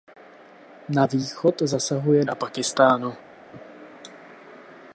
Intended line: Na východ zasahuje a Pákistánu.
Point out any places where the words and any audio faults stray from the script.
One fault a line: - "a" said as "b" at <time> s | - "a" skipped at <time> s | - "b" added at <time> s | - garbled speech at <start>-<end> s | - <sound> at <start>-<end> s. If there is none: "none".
none